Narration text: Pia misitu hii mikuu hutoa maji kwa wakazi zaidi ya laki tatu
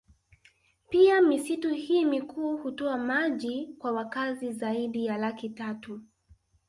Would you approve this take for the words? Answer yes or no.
yes